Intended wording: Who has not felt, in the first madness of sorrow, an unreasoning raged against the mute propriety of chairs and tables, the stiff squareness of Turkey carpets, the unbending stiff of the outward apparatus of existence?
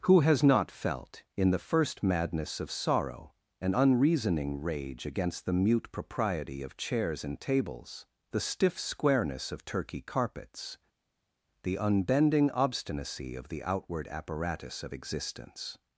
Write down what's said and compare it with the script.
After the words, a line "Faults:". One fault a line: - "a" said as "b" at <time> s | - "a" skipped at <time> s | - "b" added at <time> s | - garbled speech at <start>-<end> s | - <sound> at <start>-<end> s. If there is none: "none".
Who has not felt, in the first madness of sorrow, an unreasoning rage against the mute propriety of chairs and tables, the stiff squareness of Turkey carpets, the unbending obstinacy of the outward apparatus of existence?
Faults:
- "raged" said as "rage" at 4.6 s
- "stiff" said as "obstinacy" at 12.5 s